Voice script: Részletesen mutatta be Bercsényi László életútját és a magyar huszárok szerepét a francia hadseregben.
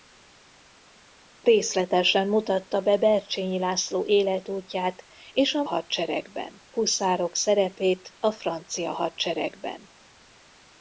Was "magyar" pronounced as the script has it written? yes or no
no